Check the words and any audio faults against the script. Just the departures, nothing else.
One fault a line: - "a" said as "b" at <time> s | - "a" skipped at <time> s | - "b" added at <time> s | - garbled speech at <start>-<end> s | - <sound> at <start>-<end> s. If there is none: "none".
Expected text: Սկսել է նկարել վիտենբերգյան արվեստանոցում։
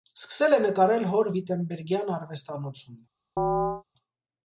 - "հոր" added at 1.1 s
- chirp at 3.4-3.8 s